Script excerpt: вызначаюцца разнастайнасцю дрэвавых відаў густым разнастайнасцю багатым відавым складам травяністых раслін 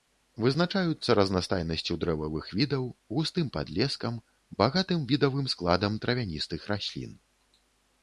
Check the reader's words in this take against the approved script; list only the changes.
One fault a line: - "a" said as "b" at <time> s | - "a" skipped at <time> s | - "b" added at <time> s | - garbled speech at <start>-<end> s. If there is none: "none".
- "разнастайнасцю" said as "падлескам" at 3.6 s